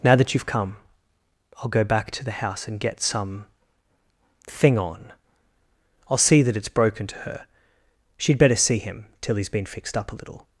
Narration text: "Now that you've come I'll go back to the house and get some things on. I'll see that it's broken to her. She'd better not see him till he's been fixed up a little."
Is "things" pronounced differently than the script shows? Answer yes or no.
yes